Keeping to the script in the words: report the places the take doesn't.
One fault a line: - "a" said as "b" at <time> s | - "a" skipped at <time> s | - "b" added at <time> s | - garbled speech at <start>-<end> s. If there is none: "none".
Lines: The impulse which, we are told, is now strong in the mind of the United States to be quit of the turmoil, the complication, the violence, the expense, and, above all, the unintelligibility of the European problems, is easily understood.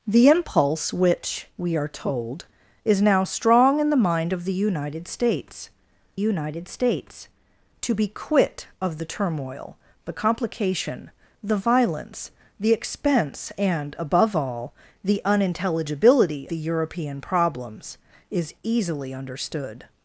- "United States" added at 6.2 s
- "of" skipped at 16.5 s